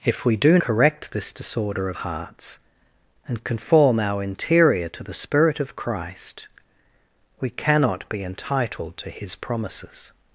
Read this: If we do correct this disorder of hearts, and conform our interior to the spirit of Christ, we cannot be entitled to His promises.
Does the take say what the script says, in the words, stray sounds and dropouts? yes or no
yes